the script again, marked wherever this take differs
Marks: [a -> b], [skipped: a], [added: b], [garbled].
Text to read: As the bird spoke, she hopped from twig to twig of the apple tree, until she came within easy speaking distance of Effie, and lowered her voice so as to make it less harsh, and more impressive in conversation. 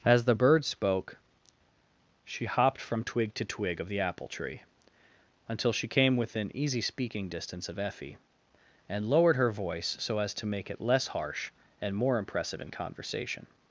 As the bird spoke, she hopped from twig to twig of the apple tree, until she came within easy speaking distance of Effie, and lowered her voice so as to make it less harsh, and more impressive in conversation.